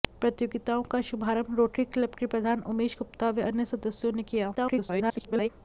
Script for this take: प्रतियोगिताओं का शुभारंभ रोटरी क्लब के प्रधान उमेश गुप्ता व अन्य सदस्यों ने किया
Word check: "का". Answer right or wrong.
right